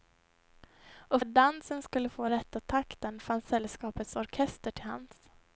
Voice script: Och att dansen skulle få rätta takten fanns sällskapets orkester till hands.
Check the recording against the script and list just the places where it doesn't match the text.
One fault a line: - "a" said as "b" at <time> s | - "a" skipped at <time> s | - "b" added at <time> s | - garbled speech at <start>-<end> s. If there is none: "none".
none